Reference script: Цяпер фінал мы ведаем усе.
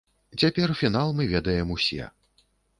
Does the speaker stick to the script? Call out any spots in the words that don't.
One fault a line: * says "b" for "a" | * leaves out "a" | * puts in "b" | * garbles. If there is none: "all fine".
all fine